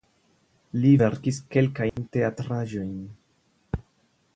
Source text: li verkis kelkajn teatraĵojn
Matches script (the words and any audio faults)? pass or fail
fail